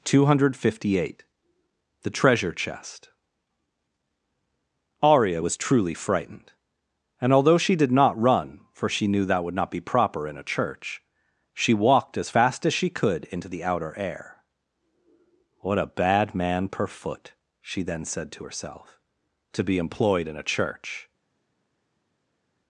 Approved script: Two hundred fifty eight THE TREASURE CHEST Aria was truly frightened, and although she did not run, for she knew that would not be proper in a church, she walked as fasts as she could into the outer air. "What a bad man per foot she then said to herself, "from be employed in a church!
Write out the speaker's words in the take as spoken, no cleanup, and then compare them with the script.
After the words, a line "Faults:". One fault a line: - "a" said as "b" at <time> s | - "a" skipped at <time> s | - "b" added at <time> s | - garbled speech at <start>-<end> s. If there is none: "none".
Two hundred fifty eight THE TREASURE CHEST Aria was truly frightened, and although she did not run, for she knew that would not be proper in a church, she walked as fast as she could into the outer air. "What a bad man per foot she then said to herself, "to be employed in a church!
Faults:
- "fasts" said as "fast" at 12.3 s
- "from" said as "to" at 19.5 s